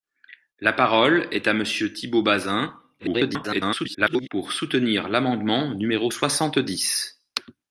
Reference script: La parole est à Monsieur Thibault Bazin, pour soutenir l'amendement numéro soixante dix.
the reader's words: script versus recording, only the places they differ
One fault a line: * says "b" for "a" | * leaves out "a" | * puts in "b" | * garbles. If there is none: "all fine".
* garbles